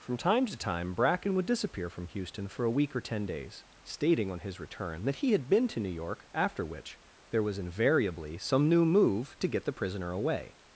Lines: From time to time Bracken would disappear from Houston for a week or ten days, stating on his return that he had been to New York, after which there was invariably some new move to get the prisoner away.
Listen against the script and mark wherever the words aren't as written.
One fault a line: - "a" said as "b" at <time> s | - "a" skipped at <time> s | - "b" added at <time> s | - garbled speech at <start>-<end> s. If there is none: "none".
none